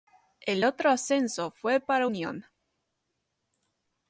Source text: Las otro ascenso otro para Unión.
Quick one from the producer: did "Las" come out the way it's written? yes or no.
no